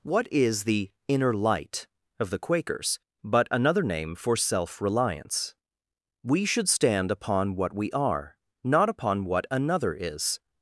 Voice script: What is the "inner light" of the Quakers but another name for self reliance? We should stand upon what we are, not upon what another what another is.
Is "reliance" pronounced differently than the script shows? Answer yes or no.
no